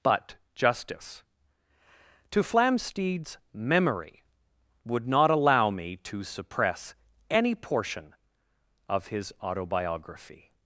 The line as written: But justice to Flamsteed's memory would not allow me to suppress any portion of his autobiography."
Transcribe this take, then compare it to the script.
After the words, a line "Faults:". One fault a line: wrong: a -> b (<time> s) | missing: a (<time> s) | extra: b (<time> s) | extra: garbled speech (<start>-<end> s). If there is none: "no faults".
But justice to Flamsteed's memory would not allow me to suppress any portion of his autobiography."
Faults:
no faults